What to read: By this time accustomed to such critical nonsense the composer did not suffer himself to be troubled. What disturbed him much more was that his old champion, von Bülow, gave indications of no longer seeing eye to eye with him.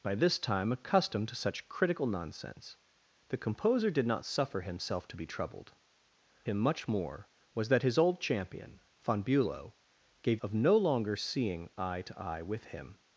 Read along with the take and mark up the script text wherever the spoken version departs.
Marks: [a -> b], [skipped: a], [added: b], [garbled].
By this time accustomed to such critical nonsense the composer did not suffer himself to be troubled. [skipped: What disturbed] him much more was that his old champion, von Bülow, gave [skipped: indications] of no longer seeing eye to eye with him.